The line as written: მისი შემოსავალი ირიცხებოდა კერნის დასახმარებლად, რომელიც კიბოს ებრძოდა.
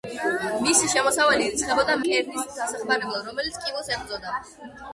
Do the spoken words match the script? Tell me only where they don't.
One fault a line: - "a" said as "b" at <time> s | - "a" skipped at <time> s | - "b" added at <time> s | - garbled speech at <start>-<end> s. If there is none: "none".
none